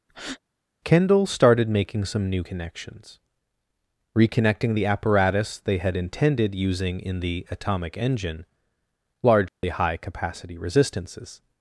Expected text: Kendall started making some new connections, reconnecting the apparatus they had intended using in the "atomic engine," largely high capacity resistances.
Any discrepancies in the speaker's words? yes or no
no